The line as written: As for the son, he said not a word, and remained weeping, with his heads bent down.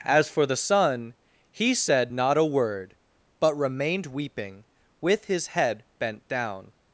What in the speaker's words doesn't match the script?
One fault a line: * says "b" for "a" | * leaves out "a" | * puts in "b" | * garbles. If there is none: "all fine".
* says "but" for "and"
* says "head" for "heads"